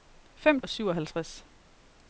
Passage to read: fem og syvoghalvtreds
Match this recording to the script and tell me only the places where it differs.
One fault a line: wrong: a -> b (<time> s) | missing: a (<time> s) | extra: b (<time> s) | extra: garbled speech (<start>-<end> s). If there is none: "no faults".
no faults